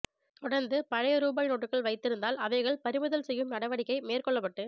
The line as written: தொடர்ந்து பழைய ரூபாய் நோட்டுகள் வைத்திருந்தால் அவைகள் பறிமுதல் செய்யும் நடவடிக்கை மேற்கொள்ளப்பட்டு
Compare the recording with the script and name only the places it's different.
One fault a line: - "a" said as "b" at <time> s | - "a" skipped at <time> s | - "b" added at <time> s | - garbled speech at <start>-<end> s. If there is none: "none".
none